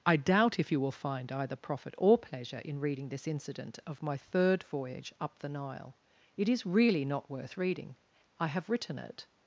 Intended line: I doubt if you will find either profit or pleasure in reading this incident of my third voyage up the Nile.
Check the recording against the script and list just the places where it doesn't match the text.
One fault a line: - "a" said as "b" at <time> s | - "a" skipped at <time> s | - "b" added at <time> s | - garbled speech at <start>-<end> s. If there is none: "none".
- "It is really not worth reading I have written it" added at 6.4 s